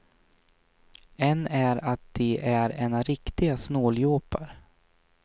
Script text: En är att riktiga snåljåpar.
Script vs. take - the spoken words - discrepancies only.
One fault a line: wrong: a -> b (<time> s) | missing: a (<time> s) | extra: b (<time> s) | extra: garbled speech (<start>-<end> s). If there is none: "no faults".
extra: de är ena (2.1 s)